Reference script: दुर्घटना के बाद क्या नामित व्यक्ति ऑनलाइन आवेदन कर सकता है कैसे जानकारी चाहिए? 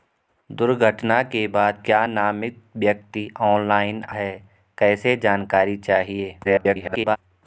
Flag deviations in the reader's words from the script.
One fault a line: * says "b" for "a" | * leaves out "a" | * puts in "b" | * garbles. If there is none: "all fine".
* leaves out "आवेदन कर सकता"
* garbles